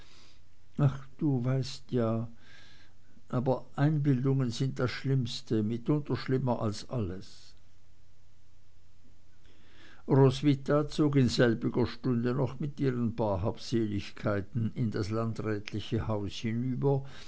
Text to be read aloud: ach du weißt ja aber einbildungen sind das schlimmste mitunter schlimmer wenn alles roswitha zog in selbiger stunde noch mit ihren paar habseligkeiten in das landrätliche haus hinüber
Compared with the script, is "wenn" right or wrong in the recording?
wrong